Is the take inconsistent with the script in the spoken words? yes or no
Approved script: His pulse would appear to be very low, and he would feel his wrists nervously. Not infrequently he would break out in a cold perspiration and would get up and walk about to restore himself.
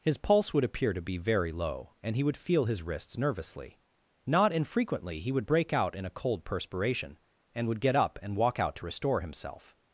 yes